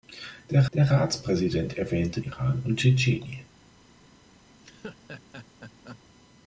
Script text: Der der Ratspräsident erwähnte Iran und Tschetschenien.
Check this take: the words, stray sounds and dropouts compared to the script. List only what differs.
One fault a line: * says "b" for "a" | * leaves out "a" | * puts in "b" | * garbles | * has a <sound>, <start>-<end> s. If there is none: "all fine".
* has a laugh, 4.5-6.0 s